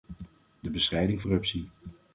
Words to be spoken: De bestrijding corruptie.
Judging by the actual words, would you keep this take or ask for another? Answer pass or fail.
pass